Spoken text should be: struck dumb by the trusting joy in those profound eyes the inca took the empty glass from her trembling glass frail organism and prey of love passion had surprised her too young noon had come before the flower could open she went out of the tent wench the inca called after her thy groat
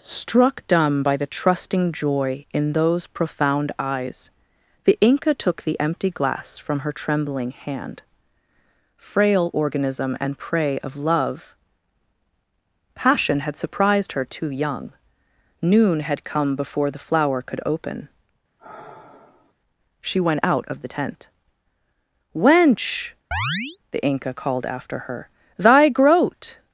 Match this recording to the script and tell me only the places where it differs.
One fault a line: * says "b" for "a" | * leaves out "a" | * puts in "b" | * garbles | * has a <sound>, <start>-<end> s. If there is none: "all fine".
* says "hand" for "glass"
* has a sigh, 18.6-19.5 s
* has a chirp, 23.3-23.8 s